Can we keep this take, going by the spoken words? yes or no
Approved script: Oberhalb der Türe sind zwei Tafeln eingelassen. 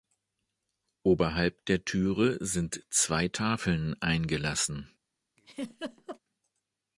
yes